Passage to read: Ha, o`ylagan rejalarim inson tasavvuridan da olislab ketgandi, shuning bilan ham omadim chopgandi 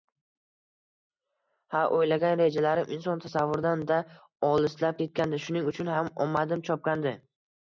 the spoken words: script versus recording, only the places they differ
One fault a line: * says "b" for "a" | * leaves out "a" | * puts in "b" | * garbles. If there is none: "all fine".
* says "uchun" for "bilan"